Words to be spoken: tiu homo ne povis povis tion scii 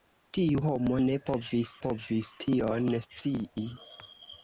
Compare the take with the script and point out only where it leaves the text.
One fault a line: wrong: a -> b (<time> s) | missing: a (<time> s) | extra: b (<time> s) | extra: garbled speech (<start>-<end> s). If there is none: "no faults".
no faults